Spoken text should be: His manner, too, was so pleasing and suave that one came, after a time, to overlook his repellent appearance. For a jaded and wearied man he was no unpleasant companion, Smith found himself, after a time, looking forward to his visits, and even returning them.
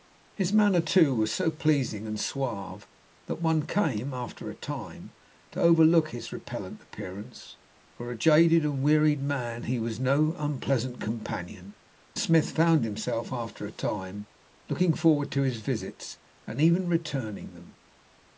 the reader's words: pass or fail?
pass